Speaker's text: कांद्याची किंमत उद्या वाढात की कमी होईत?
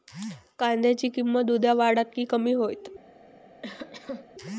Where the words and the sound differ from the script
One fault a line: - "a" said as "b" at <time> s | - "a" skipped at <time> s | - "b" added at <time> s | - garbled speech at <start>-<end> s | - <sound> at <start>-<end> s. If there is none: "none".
- cough at 3.6-4.3 s